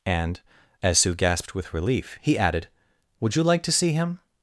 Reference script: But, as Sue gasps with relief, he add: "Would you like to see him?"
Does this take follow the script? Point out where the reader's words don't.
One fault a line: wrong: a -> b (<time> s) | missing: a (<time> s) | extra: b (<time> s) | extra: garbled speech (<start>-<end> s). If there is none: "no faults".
wrong: But -> And (0.1 s)
wrong: gasps -> gasped (1.1 s)
wrong: add -> added (2.4 s)